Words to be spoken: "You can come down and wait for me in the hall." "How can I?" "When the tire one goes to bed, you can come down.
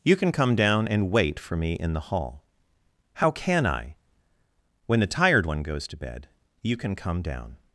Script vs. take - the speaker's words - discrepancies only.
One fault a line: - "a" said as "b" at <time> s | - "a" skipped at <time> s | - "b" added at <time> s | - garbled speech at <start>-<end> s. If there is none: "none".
- "tire" said as "tired" at 5.1 s